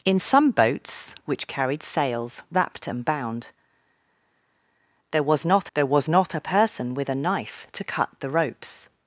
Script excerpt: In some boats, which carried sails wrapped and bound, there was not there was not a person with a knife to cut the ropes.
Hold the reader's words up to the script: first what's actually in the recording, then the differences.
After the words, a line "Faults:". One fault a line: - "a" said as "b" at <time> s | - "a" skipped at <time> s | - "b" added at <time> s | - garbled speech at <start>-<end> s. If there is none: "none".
In some boats, which carried sails wrapped and bound, there was not there was not a person with a knife to cut the ropes.
Faults:
none